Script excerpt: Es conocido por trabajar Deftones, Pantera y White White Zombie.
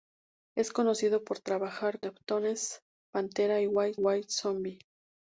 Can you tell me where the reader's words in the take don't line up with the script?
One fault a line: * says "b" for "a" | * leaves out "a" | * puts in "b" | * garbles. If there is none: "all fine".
all fine